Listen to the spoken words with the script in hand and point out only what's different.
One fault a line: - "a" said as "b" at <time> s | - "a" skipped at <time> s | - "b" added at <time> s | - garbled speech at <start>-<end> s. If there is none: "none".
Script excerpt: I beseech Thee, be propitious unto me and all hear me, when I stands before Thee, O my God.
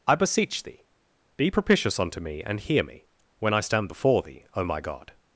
- "all" skipped at 2.6 s
- "stands" said as "stand" at 3.6 s